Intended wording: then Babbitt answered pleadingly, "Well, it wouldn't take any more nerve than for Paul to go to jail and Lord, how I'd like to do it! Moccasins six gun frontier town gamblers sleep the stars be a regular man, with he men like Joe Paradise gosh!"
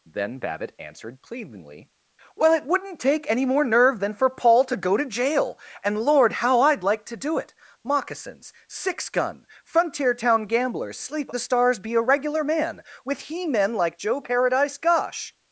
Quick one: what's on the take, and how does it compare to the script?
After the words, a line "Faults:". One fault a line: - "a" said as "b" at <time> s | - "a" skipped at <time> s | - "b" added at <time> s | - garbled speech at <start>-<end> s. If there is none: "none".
then Babbitt answered pleadingly, "Well, it wouldn't take any more nerve than for Paul to go to jail and Lord, how I'd like to do it! Moccasins six gun frontier town gamblers sleep the stars be a regular man, with he men like Joe Paradise gosh!"
Faults:
none